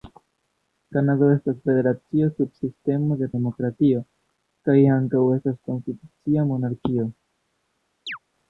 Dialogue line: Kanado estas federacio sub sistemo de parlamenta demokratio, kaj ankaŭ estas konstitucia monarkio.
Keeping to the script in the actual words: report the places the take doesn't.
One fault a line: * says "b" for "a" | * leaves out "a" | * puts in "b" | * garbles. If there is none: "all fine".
* leaves out "parlamenta"